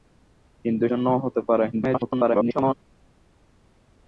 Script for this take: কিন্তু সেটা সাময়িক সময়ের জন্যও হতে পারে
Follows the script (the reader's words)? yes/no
no